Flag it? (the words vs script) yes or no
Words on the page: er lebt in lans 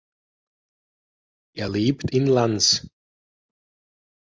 no